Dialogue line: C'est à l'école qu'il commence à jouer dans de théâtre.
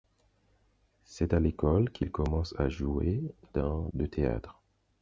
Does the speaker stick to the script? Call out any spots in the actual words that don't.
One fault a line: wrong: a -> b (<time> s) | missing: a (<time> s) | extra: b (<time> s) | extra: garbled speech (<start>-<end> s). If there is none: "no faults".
no faults